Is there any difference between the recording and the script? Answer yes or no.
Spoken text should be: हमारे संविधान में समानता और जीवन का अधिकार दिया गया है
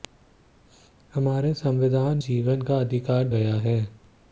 yes